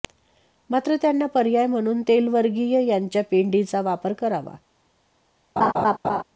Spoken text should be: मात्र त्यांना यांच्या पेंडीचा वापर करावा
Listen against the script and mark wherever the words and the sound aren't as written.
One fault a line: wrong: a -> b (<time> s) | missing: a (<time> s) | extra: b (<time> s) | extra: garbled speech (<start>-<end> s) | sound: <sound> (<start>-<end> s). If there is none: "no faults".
extra: पर्याय म्हणून तेलवर्गीय (1.2 s)
sound: laugh (5.6-6.2 s)